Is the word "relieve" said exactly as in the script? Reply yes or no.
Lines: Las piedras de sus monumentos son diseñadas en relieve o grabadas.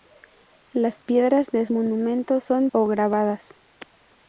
no